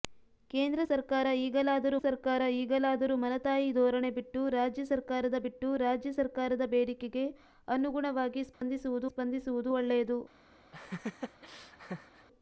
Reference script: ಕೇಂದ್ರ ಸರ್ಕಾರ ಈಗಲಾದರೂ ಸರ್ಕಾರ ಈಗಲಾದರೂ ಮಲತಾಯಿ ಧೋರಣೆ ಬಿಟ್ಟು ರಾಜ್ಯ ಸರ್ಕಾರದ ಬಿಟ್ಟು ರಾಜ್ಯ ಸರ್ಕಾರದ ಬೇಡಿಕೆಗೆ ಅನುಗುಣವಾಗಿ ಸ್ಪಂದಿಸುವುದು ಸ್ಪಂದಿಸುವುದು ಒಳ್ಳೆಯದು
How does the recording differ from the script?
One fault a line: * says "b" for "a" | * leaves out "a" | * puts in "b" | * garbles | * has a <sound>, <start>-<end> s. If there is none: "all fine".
* has a dropout, 8.5-8.6 s
* has a laugh, 10.7-12.3 s